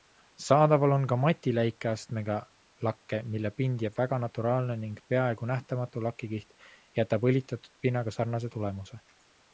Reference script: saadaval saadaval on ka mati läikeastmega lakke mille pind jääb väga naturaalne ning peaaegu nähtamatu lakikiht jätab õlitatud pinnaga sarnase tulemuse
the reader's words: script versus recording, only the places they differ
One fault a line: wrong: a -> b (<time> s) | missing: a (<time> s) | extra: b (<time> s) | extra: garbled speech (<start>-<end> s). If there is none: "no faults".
missing: saadaval (0.9 s)